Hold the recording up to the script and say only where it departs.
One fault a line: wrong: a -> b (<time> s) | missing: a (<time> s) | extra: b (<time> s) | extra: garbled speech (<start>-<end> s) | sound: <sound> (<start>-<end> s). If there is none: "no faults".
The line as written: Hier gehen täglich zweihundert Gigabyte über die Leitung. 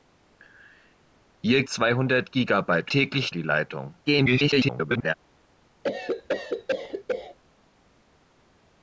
missing: gehen täglich (1.6 s)
wrong: über -> täglich (2.9 s)
extra: garbled speech (4.1-5.1 s)
sound: cough (5.8-7.4 s)